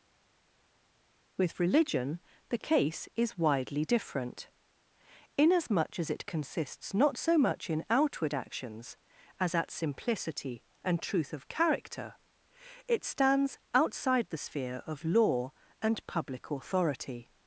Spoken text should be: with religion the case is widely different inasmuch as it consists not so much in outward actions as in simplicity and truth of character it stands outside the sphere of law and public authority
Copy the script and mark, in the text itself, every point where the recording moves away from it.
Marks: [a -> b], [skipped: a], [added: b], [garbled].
with religion the case is widely different inasmuch as it consists not so much in outward actions as [in -> at] simplicity and truth of character it stands outside the sphere of law and public authority